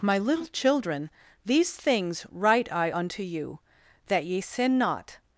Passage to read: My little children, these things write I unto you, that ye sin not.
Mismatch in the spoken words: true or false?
false